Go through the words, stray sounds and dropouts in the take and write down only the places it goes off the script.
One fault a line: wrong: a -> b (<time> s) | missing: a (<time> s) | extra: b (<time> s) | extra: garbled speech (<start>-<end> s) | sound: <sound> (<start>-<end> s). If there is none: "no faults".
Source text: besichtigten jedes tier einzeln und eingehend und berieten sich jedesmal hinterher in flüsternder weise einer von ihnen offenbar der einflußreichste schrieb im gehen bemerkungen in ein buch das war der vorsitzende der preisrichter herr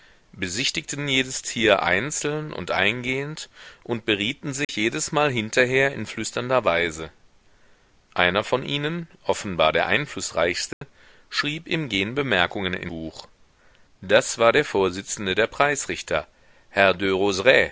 sound: dropout (4.6-4.7 s)
sound: dropout (10.7-10.8 s)
missing: ein (12.9 s)